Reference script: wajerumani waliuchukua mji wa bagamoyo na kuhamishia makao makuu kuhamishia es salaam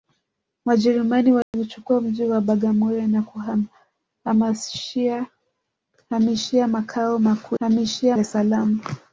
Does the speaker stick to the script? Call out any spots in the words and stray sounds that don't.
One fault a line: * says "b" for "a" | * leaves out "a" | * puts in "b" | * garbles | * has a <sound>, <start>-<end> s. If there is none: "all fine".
* has a dropout, 1.4-1.5 s